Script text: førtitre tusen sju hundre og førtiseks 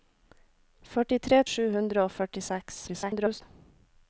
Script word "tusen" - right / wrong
wrong